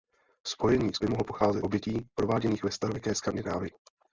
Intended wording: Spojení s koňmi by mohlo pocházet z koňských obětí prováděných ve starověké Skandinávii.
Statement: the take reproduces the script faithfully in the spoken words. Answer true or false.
false